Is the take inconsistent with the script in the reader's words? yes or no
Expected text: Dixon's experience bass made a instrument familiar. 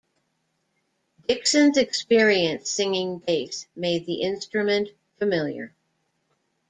yes